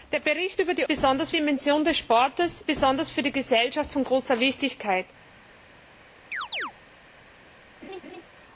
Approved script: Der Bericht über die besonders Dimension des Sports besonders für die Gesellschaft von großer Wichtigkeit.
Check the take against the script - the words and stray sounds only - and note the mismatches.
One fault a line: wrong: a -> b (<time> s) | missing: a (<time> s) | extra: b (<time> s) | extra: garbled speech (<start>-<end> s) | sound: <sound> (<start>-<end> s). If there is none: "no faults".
sound: chirp (6.3-6.7 s)
sound: laugh (7.8-8.2 s)